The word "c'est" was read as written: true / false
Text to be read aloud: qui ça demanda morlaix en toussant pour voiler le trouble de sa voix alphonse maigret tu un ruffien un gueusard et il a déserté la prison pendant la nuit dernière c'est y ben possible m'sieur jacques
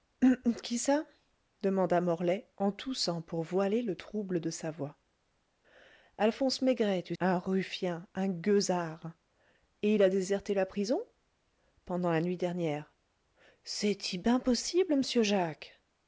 true